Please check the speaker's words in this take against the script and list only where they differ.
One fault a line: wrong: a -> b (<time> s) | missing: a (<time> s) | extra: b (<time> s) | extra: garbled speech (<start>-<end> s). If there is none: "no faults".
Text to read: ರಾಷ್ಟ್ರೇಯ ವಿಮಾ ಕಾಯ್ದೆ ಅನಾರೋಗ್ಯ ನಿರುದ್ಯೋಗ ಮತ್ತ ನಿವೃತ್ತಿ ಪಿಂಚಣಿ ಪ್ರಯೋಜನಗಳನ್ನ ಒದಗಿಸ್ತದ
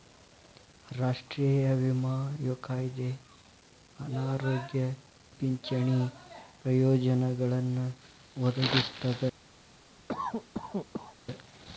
missing: ನಿರುದ್ಯೋಗ ಮತ್ತ ನಿವೃತ್ತಿ (4.8 s)